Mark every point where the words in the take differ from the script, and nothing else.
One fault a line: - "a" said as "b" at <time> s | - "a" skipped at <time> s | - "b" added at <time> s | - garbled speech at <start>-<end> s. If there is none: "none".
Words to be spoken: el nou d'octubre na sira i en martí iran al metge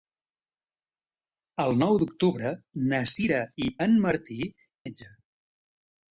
- "iran al" skipped at 4.4 s